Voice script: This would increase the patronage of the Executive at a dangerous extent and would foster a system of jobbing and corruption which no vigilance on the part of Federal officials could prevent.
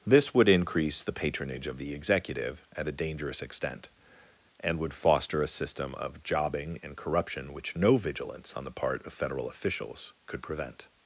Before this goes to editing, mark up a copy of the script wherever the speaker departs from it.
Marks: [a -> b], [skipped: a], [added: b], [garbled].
This would increase the patronage of the Executive at a dangerous extent and would foster a system of jobbing and corruption which no vigilance on the part of Federal officials could prevent.